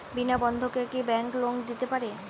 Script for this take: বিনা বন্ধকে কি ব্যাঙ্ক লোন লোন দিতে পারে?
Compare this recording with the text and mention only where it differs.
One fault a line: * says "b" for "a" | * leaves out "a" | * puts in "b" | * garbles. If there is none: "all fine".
* leaves out "লোন"